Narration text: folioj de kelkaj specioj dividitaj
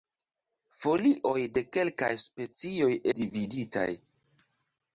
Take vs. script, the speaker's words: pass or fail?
pass